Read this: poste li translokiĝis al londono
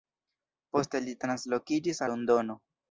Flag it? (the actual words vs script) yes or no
yes